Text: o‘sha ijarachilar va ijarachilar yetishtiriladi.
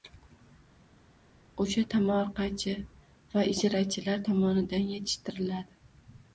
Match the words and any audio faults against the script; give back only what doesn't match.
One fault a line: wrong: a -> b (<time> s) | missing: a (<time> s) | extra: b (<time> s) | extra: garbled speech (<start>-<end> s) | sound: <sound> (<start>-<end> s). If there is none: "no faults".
wrong: ijarachilar -> tomorqachi (1.9 s)
extra: tomonidan (4.3 s)